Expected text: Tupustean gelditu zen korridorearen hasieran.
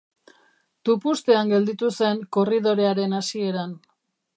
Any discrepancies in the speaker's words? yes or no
no